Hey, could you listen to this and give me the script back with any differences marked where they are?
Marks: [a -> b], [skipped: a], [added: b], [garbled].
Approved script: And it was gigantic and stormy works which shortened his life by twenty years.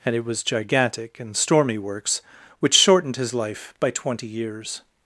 And it was gigantic and stormy works which shortened his life by twenty years.